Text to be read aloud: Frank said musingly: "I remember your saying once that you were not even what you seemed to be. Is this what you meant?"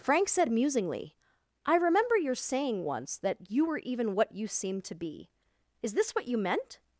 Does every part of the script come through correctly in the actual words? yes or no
no